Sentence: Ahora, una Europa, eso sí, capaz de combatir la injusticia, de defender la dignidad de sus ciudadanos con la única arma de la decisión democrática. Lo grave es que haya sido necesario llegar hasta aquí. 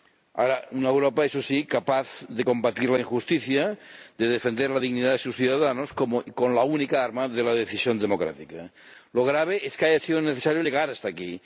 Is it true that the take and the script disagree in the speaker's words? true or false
false